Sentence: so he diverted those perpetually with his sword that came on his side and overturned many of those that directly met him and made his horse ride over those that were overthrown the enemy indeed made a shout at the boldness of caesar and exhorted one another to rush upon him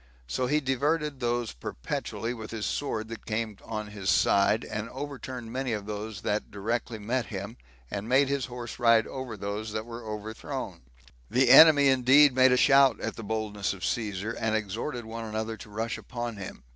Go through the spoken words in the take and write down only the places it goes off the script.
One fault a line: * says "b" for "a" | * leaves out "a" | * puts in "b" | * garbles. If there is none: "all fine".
all fine